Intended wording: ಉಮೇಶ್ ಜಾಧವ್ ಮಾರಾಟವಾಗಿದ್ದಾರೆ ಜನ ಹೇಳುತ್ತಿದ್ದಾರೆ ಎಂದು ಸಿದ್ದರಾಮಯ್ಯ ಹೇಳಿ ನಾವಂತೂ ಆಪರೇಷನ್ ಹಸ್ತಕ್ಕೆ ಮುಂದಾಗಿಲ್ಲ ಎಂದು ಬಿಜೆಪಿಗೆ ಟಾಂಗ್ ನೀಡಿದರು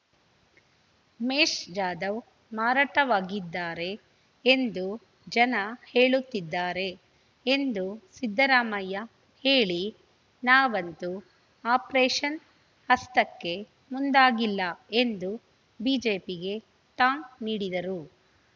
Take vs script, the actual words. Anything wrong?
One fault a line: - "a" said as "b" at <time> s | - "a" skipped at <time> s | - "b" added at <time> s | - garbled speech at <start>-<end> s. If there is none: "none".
- "ಎಂದು" added at 4.4 s